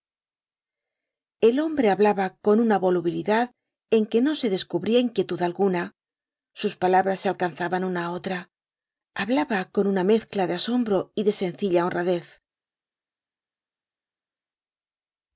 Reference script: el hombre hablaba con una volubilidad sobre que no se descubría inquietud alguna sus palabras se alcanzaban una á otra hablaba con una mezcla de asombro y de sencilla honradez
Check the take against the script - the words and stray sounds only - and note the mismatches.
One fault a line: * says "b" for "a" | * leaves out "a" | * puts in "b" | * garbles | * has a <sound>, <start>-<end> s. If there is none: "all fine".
* says "en" for "sobre"